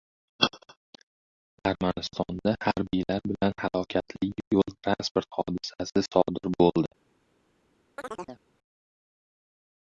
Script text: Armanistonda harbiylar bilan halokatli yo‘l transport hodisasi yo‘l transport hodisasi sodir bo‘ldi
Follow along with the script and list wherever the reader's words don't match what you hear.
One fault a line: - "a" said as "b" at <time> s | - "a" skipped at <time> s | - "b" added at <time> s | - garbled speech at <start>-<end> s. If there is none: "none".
- "yo‘l transport hodisasi" skipped at 6.0 s